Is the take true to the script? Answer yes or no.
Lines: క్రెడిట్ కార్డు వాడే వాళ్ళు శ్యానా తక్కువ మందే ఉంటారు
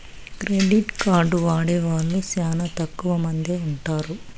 yes